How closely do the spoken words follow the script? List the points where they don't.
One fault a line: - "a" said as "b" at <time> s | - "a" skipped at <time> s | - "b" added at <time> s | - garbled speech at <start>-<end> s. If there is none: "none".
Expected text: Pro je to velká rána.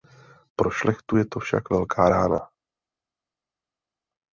- "šlechtu" added at 0.7 s
- "však" added at 1.4 s